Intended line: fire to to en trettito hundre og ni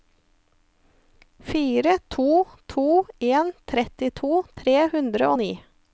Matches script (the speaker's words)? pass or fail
fail